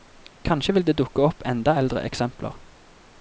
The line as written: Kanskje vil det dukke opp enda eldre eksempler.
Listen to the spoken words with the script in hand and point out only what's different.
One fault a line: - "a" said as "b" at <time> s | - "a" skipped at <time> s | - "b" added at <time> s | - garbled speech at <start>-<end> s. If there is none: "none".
none